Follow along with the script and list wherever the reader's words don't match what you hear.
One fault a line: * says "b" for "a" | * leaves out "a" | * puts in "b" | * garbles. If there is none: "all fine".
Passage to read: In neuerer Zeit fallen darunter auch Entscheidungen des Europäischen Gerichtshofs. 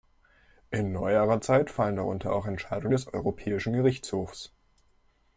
all fine